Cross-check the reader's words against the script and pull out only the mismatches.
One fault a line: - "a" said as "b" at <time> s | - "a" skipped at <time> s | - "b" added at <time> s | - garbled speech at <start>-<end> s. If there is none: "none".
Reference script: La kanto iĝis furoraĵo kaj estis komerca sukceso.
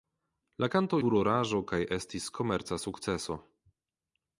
- "iĝis" skipped at 1.0 s